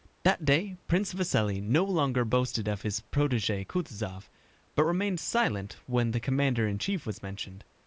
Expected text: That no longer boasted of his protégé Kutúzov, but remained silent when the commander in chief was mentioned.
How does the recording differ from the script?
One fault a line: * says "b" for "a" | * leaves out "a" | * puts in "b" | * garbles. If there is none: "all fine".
* puts in "day Prince Vasíli"